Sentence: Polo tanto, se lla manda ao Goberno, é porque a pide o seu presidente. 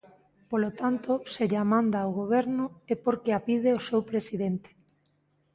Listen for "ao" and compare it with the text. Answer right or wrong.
right